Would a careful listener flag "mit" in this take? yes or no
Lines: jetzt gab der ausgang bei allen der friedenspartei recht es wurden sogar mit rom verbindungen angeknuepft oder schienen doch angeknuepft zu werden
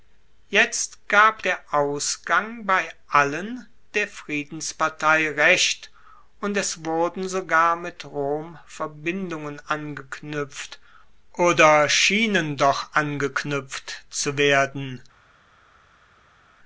no